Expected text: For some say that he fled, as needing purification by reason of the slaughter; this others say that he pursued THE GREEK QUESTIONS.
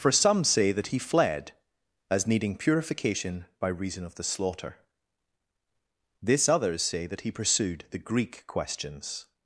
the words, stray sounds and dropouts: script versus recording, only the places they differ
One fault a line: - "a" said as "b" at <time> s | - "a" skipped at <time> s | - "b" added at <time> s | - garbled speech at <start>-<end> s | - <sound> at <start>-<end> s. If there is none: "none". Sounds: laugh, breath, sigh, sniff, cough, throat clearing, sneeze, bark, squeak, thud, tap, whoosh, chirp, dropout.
none